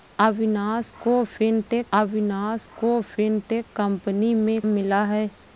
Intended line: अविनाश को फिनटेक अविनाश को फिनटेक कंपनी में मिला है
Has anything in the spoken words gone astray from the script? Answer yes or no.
no